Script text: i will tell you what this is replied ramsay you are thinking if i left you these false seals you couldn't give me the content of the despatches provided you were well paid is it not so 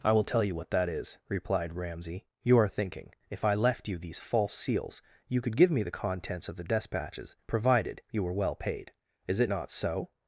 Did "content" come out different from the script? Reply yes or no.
yes